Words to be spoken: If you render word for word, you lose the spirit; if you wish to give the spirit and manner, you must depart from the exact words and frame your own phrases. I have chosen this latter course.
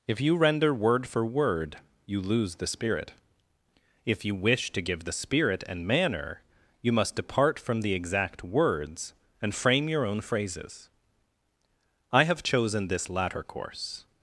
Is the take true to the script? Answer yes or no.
yes